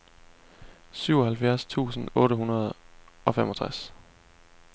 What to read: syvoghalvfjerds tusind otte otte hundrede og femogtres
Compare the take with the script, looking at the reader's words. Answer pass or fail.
fail